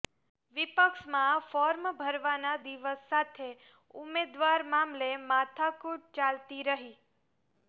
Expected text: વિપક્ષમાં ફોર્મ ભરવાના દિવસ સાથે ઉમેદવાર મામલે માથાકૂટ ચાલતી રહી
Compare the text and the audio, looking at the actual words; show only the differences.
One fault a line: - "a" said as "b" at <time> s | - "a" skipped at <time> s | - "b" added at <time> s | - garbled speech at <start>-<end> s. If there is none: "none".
none